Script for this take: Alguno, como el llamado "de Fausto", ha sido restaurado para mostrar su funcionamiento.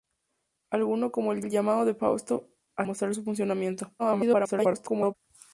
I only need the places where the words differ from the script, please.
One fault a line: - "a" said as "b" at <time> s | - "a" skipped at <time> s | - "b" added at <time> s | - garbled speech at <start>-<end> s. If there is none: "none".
- "el" added at 1.4 s
- "sido restaurado para" skipped at 2.9 s
- garbled speech at 4.0-5.1 s